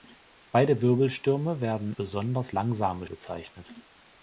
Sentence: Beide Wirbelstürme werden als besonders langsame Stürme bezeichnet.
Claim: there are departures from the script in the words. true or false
true